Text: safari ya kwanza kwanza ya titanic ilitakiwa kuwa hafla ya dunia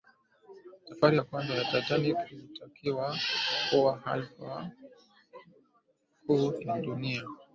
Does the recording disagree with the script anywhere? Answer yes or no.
yes